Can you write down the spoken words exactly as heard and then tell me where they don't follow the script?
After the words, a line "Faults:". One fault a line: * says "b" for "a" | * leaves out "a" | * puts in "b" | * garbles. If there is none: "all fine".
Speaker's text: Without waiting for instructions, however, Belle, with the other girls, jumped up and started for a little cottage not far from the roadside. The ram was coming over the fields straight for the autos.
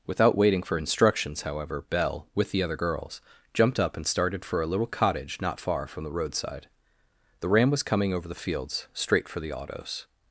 Without waiting for instructions, however, Belle, with the other girls, jumped up and started for a little cottage not far from the roadside. The ram was coming over the fields straight for the autos.
Faults:
all fine